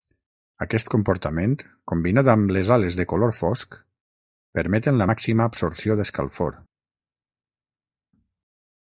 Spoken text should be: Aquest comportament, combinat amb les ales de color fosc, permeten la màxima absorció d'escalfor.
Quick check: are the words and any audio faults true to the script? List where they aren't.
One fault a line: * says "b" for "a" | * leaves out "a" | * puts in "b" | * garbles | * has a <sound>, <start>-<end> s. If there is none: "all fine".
all fine